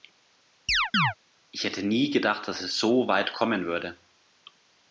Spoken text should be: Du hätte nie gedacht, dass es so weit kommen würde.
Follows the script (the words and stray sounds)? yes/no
no